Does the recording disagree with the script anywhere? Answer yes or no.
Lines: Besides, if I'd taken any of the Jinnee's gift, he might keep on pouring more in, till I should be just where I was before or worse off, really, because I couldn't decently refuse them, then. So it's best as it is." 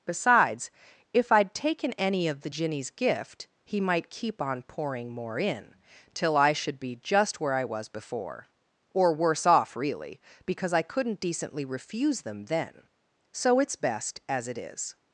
no